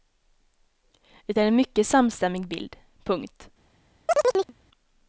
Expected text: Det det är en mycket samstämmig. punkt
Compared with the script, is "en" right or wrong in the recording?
right